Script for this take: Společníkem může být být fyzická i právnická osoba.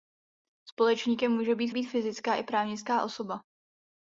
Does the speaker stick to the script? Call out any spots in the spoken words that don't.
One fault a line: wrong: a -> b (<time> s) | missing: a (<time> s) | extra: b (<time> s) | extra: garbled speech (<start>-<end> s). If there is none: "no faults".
no faults